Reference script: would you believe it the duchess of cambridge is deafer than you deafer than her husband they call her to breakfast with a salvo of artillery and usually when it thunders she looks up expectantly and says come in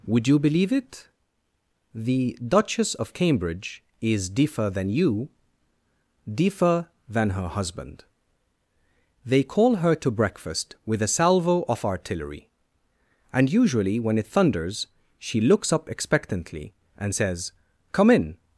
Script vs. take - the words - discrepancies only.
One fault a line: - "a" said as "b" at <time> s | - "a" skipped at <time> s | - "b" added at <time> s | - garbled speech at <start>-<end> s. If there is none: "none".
none